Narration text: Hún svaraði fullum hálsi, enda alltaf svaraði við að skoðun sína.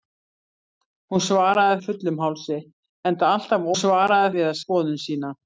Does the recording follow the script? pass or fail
pass